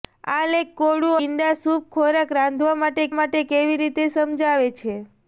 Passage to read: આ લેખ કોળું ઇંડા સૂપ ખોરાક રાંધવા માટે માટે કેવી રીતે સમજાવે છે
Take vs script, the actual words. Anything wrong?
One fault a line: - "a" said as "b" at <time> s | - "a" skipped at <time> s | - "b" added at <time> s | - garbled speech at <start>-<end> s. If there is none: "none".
none